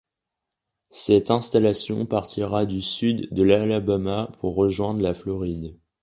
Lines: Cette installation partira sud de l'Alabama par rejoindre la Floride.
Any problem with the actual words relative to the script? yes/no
yes